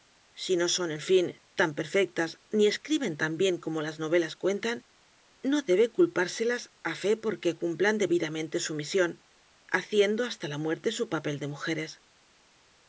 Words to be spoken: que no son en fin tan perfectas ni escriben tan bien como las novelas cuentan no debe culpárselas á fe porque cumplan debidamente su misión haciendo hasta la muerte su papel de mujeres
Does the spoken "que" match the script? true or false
false